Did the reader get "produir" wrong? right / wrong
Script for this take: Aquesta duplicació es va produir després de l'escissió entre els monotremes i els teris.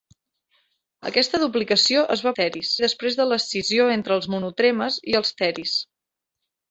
wrong